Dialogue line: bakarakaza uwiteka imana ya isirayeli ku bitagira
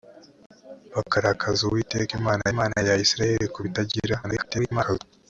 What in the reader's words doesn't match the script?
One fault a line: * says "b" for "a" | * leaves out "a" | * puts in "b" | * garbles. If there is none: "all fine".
* puts in "imana"
* garbles